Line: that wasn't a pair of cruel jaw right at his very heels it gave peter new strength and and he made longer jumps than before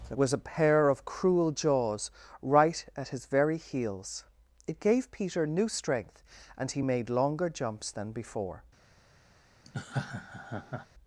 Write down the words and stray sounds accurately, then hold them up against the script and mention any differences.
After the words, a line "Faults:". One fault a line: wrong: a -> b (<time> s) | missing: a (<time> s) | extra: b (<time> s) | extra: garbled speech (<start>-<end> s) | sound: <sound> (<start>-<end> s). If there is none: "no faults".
that was a pair of cruel jaws right at his very heels it gave peter new strength and he made longer jumps than before
Faults:
wrong: wasn't -> was (0.2 s)
wrong: jaw -> jaws (1.5 s)
missing: and (6.7 s)
sound: laugh (9.7-10.9 s)